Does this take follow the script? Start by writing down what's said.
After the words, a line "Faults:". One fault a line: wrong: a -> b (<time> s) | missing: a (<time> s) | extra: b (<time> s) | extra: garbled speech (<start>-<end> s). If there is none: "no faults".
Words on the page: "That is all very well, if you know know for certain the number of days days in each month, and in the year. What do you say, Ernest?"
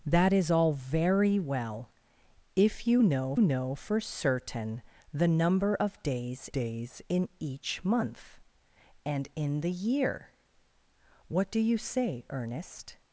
"That is all very well, if you know know for certain the number of days days in each month, and in the year. What do you say, Ernest?"
Faults:
no faults